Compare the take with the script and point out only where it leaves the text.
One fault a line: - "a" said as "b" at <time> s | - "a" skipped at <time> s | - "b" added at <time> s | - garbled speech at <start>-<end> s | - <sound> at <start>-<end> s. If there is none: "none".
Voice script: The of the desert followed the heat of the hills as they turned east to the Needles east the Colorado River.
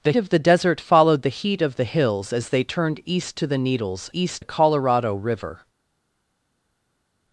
none